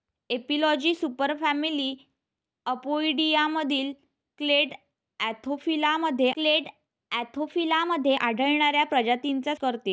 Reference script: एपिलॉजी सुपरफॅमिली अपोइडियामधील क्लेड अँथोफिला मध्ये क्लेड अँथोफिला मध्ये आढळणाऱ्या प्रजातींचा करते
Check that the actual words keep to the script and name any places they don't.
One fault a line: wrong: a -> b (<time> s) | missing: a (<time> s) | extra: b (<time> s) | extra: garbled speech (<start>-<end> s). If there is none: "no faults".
no faults